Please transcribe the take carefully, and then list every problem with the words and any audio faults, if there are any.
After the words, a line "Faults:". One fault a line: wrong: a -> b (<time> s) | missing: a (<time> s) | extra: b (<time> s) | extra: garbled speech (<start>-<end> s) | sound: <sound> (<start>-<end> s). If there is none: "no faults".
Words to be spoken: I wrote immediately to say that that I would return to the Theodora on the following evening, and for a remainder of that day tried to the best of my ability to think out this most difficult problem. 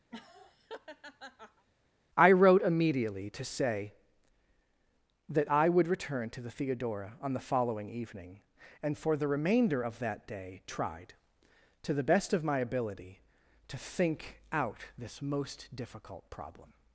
I wrote immediately to say that I would return to the Theodora on the following evening, and for the remainder of that day tried to the best of my ability to think out this most difficult problem.
Faults:
sound: laugh (0.1-1.7 s)
missing: that (5.5 s)
wrong: a -> the (9.2 s)